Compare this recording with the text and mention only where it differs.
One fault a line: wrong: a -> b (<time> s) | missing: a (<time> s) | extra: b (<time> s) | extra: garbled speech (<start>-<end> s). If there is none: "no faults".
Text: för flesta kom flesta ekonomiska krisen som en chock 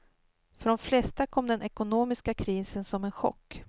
extra: de (0.7 s)
wrong: flesta -> den (1.5 s)